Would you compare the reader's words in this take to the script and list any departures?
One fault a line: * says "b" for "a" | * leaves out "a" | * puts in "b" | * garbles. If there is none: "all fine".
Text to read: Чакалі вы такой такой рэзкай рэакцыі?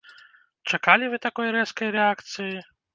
* leaves out "такой"